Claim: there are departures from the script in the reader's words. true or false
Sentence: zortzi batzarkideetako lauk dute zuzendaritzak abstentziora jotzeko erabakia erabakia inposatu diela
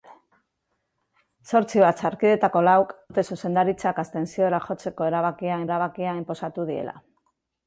false